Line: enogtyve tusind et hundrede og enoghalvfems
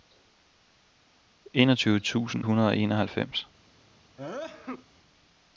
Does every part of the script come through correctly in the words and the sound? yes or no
no